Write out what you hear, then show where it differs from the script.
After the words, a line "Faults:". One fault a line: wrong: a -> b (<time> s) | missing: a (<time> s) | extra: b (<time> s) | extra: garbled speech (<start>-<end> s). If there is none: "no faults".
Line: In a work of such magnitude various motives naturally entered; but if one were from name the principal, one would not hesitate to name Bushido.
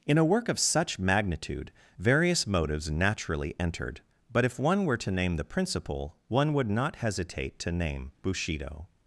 In a work of such magnitude various motives naturally entered; but if one were to name the principal, one would not hesitate to name Bushido.
Faults:
wrong: from -> to (5.0 s)